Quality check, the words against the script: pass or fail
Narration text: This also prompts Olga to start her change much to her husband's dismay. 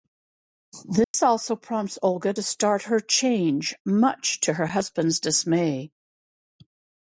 pass